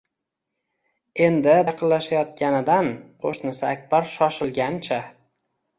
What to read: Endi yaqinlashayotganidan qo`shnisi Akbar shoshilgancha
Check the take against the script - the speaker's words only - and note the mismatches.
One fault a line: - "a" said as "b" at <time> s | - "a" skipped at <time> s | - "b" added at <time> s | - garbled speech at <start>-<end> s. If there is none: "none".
none